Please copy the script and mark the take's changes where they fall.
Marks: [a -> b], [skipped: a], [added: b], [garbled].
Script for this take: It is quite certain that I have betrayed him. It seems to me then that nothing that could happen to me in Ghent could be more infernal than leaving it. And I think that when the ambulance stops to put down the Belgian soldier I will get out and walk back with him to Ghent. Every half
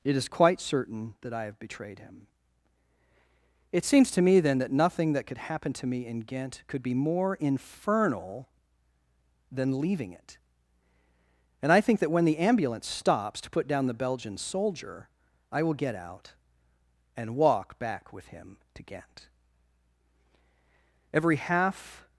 It is quite certain that I have betrayed him. It seems to me then that nothing that could happen to me in Ghent could be more infernal than leaving it. And I think that when the ambulance stops to put down the Belgian soldier I will get out and walk back with him to Ghent. Every half